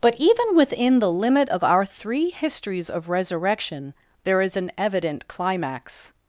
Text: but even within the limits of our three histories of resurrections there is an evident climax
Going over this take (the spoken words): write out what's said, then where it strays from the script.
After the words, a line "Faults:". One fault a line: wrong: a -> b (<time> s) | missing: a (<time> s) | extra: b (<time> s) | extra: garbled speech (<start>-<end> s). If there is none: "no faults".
but even within the limit of our three histories of resurrection there is an evident climax
Faults:
wrong: limits -> limit (1.1 s)
wrong: resurrections -> resurrection (3.1 s)